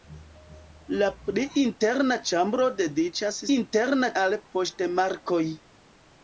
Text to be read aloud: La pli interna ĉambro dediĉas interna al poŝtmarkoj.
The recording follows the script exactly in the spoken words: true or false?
true